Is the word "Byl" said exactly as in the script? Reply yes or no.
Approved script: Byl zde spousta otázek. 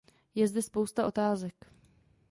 no